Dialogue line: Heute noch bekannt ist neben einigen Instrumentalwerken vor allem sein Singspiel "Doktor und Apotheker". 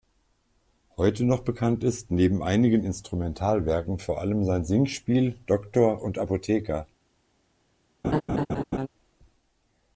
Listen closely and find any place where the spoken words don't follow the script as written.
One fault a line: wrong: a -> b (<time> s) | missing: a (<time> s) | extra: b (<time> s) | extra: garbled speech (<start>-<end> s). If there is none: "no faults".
no faults